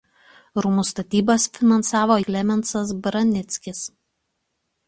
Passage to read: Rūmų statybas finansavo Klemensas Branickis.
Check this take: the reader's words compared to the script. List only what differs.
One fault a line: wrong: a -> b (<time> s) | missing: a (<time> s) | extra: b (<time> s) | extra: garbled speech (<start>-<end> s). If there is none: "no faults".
no faults